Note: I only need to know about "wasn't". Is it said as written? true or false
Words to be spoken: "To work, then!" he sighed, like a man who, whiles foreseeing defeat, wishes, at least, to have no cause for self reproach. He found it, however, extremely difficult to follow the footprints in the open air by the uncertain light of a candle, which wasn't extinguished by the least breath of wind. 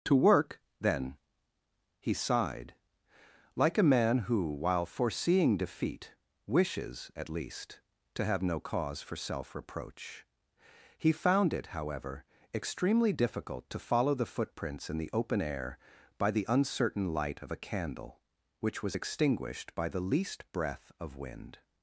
false